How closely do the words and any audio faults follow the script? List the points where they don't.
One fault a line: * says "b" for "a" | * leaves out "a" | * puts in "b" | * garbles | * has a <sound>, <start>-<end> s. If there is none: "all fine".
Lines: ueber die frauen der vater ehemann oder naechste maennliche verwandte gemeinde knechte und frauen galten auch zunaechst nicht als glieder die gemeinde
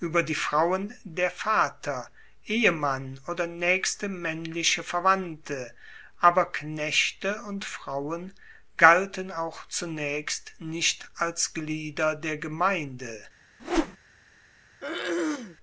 * says "aber" for "gemeinde"
* says "der" for "die"
* has a whoosh, 13.6-14.0 s
* has a throat clearing, 14.8-15.6 s